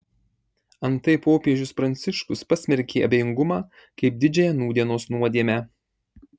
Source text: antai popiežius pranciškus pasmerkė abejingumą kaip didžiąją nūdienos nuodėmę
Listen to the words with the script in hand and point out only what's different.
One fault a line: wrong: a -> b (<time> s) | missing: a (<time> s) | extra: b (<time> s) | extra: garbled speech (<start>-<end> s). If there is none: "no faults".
no faults